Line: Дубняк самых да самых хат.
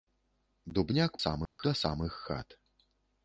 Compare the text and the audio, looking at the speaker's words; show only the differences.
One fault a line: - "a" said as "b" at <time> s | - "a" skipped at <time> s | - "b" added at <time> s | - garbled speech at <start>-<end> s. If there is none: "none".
none